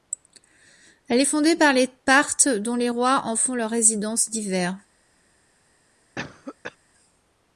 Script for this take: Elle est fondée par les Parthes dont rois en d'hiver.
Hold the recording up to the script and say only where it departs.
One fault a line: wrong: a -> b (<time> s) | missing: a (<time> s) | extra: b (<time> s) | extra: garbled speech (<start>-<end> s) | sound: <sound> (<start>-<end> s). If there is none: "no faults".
extra: les (2.8 s)
extra: font leur résidence (3.4 s)
sound: cough (6.2-6.8 s)